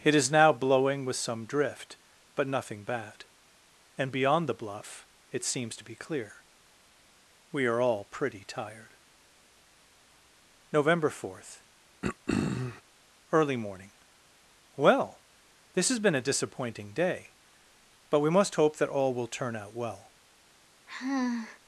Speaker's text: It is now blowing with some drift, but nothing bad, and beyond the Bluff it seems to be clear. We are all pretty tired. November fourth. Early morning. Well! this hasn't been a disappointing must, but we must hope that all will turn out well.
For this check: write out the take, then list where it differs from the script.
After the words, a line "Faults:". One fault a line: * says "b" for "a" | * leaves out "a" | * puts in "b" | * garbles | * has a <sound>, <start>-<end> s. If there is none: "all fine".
It is now blowing with some drift, but nothing bad, and beyond the Bluff it seems to be clear. We are all pretty tired. November fourth. Early morning. Well! this has been a disappointing day, but we must hope that all will turn out well.
Faults:
* has a throat clearing, 12.0-12.8 s
* says "has" for "hasn't"
* says "day" for "must"
* has a sigh, 20.9-21.6 s